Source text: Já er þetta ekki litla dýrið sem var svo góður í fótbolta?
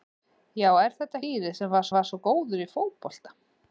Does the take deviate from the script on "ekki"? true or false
true